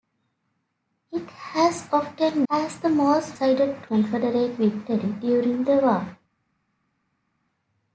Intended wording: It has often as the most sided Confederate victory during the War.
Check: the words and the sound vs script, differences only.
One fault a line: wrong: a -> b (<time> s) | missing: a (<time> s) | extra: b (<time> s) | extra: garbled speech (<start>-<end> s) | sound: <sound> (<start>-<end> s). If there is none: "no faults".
no faults